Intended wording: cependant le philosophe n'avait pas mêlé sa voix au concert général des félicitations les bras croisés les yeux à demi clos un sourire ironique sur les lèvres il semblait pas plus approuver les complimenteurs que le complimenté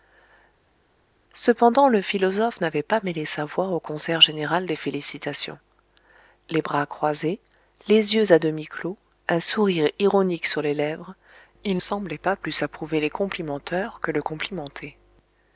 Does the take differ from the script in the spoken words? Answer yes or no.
no